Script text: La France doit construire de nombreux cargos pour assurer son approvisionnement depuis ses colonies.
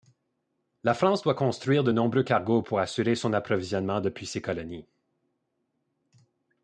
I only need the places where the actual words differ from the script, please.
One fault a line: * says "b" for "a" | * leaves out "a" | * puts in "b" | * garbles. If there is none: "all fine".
all fine